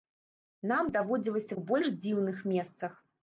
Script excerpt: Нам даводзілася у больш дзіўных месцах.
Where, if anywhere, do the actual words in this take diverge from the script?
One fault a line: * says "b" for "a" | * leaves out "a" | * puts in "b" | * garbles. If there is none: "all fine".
all fine